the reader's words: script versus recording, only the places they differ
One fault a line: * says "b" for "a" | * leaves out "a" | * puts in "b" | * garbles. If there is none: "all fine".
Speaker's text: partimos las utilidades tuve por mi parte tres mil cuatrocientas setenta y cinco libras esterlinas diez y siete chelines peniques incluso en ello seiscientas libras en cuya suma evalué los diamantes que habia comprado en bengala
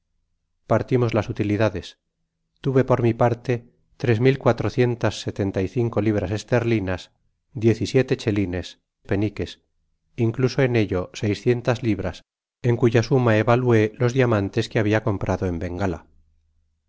all fine